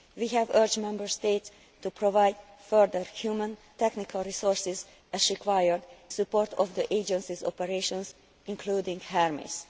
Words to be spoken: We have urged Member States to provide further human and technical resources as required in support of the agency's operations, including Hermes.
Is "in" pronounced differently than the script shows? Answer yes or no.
yes